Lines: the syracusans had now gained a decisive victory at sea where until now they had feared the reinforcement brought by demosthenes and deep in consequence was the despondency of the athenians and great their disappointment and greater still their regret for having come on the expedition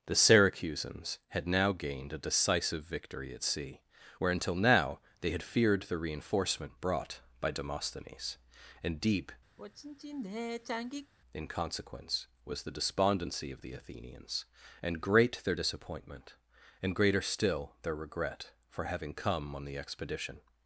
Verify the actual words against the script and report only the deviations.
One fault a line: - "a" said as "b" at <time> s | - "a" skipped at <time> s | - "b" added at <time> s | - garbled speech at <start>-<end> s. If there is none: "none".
none